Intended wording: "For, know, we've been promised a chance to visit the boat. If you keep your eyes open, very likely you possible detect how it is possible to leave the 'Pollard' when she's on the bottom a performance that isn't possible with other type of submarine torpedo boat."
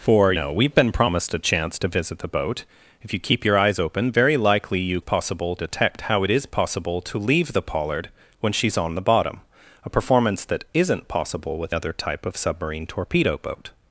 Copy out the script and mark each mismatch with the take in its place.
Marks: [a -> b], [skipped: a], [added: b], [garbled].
"For, know, we've been promised a chance to visit the boat. If you keep your eyes open, very likely you possible detect how it is possible to leave the 'Pollard' when she's on the bottom a performance that isn't possible with other type of submarine torpedo boat."